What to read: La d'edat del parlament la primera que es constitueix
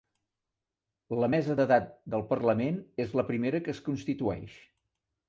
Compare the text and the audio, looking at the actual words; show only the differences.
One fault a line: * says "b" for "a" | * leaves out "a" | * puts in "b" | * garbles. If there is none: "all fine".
* puts in "mesa"
* puts in "és"